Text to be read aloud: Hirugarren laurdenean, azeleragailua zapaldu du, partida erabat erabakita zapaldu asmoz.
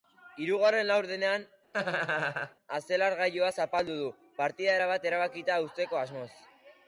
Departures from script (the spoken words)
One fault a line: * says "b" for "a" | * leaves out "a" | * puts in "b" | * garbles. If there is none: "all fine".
* says "uzteko" for "zapaldu"